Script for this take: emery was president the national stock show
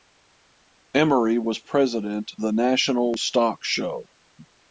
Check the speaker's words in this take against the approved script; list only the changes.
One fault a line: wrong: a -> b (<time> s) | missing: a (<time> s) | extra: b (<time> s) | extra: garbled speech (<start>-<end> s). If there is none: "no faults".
no faults